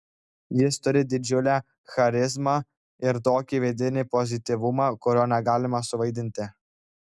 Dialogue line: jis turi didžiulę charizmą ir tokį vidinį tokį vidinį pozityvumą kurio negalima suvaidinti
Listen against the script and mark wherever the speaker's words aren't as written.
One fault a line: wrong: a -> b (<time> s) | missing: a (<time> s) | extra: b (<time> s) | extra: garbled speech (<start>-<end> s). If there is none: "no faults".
missing: tokį vidinį (4.0 s)